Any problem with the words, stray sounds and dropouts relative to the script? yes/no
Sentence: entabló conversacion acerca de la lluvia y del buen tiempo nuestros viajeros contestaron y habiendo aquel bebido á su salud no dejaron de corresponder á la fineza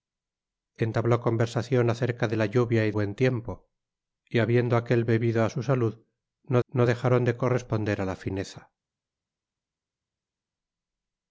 yes